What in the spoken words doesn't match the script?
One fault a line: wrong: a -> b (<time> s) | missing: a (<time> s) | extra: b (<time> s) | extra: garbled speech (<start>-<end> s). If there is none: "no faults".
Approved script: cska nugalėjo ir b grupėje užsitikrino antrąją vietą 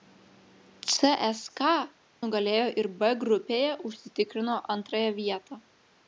no faults